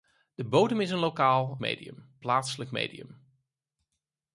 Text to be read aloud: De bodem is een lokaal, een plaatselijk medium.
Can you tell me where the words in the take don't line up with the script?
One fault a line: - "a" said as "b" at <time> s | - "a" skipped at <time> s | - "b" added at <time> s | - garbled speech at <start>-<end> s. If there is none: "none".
- "een" said as "medium" at 1.6 s